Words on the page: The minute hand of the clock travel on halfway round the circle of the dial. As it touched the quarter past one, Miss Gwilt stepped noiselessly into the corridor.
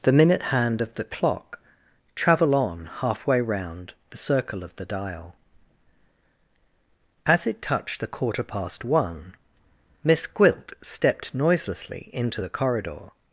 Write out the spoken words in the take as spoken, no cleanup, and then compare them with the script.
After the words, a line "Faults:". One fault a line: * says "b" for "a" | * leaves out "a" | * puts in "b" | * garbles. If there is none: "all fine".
The minute hand of the clock travel on halfway round the circle of the dial. As it touched the quarter past one, Miss Gwilt stepped noiselessly into the corridor.
Faults:
all fine